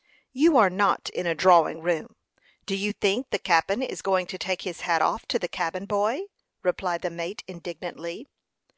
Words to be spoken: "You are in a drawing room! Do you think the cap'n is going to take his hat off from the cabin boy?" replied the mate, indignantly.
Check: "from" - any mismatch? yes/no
yes